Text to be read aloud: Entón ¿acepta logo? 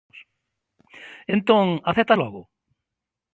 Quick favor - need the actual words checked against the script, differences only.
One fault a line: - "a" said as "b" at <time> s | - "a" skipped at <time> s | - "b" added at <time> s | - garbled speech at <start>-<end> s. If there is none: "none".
none